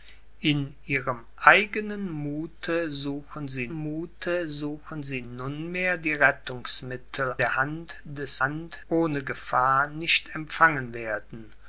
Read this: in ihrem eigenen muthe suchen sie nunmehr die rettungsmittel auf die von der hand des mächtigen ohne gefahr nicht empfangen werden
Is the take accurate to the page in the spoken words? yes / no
no